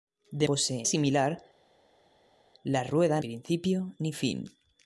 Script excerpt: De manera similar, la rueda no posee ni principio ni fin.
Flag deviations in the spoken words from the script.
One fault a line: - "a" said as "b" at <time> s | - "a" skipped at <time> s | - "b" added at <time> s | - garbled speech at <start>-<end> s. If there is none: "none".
- "manera" said as "posee" at 0.4 s
- "no posee ni" skipped at 3.2 s